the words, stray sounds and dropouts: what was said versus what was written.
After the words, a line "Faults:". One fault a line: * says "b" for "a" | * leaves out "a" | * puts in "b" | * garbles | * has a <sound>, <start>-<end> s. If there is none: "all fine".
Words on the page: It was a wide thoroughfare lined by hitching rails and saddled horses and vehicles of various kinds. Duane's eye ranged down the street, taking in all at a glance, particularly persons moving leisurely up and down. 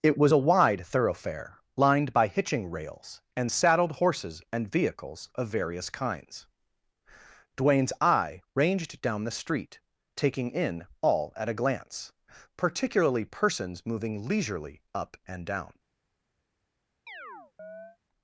It was a wide thoroughfare lined by hitching rails and saddled horses and vehicles of various kinds. Duane's eye ranged down the street, taking in all at a glance, particularly persons moving leisurely up and down.
Faults:
* has a chirp, 17.1-18.0 s